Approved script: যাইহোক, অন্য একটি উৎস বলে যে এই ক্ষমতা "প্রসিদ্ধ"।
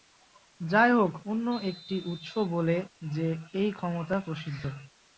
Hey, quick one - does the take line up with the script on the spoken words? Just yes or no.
yes